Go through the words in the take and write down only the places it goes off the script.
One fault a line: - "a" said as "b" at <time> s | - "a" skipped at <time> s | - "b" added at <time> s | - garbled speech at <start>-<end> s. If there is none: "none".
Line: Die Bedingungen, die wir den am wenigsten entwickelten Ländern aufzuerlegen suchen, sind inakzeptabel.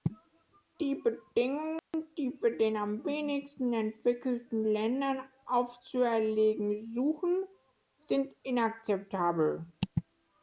none